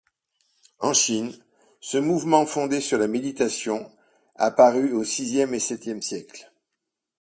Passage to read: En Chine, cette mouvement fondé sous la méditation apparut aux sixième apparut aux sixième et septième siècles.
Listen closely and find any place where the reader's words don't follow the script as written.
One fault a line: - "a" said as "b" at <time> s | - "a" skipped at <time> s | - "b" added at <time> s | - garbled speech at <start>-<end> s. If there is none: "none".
- "cette" said as "ce" at 1.8 s
- "sous" said as "sur" at 2.8 s
- "apparut aux sixième" skipped at 5.5 s